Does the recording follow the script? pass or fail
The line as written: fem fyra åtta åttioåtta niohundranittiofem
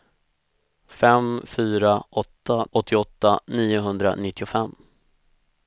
pass